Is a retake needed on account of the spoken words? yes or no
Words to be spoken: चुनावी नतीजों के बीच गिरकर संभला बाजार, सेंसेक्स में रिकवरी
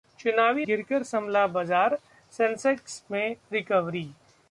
yes